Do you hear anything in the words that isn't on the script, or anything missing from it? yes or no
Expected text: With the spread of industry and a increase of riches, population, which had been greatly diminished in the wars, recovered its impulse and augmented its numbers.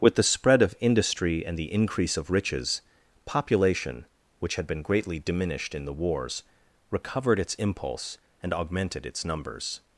yes